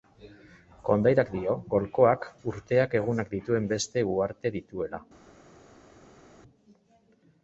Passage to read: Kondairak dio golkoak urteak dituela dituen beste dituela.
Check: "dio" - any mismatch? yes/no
no